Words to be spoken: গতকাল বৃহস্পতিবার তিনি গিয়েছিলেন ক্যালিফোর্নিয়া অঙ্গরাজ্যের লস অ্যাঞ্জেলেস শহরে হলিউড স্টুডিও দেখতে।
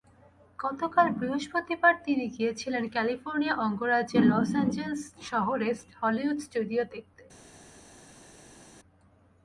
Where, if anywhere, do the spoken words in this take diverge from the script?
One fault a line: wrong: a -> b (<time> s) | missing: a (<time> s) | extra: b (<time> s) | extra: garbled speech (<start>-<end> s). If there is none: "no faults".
no faults